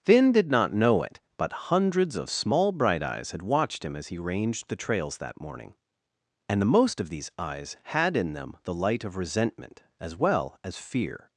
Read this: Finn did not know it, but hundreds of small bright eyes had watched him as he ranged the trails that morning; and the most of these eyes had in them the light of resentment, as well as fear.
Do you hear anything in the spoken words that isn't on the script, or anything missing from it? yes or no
no